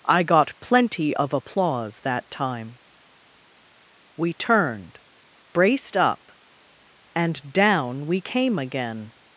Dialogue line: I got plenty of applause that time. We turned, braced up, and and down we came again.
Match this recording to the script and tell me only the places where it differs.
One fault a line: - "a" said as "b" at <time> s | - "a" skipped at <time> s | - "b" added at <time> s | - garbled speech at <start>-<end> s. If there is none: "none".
- "and" skipped at 7.5 s